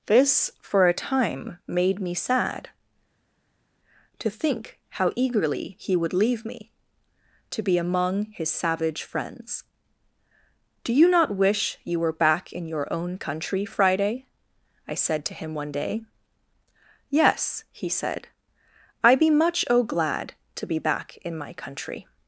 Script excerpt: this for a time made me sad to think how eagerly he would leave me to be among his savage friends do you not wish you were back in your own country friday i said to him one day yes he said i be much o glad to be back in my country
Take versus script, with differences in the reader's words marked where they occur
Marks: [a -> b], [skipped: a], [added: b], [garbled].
this for a time made me sad to think how eagerly he would leave me to be among his savage friends do you not wish you were back in your own country friday i said to him one day yes he said i be much o glad to be back in my country